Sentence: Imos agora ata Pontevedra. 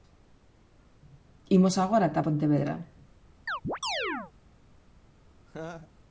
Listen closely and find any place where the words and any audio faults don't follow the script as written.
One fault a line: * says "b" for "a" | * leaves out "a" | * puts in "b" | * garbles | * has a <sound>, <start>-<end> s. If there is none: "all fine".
* has a chirp, 3.5-4.3 s
* has a laugh, 5.5-5.9 s